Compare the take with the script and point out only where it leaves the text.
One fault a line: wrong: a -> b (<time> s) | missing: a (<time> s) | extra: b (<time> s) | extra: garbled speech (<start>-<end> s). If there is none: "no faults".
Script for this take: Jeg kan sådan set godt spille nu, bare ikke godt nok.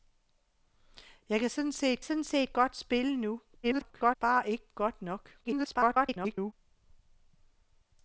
extra: sådan set (2.0 s)
extra: garbled speech (3.6-4.2 s)
extra: garbled speech (5.4-6.5 s)